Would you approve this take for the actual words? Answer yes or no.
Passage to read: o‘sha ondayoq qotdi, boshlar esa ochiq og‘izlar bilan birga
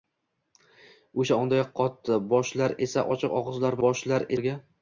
no